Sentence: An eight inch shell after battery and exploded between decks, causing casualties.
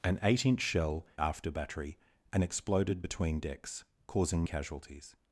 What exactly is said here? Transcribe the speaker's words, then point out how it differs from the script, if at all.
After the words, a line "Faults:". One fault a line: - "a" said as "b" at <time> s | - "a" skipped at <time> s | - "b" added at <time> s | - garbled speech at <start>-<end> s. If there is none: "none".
An eight inch shell after battery and exploded between decks, causing casualties.
Faults:
none